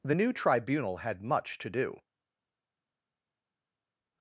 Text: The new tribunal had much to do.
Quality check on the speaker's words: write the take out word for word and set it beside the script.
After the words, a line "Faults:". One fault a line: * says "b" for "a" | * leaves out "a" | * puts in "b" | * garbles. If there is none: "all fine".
The new tribunal had much to do.
Faults:
all fine